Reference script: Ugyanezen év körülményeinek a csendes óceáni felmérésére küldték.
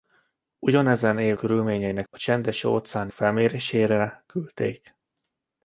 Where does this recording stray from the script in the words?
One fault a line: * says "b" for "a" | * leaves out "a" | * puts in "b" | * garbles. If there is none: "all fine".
all fine